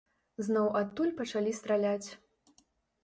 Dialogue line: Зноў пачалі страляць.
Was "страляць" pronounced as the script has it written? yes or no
yes